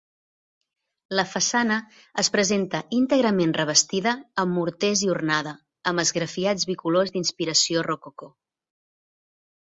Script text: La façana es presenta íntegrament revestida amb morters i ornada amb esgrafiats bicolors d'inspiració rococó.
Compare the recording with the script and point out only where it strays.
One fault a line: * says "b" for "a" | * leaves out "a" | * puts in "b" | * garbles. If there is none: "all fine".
all fine